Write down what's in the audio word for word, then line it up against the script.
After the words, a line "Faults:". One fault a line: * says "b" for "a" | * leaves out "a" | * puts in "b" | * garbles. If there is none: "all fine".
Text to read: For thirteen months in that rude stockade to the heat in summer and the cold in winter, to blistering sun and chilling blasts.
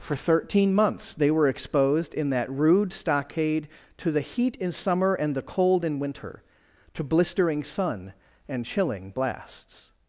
For thirteen months they were exposed in that rude stockade to the heat in summer and the cold in winter, to blistering sun and chilling blasts.
Faults:
* puts in "they were exposed"